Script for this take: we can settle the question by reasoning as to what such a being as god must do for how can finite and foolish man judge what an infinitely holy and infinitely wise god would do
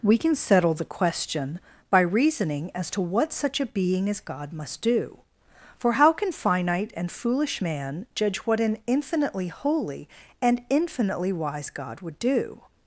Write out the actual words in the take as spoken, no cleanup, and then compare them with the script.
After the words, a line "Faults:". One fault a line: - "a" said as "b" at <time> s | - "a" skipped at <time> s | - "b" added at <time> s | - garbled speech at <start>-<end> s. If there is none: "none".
we can settle the question by reasoning as to what such a being as god must do for how can finite and foolish man judge what an infinitely holy and infinitely wise god would do
Faults:
none